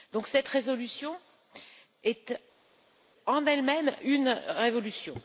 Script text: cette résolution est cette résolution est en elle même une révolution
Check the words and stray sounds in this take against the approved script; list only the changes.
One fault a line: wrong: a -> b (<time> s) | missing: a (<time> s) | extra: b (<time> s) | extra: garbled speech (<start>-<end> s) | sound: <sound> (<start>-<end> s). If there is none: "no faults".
missing: cette résolution est (2.4 s)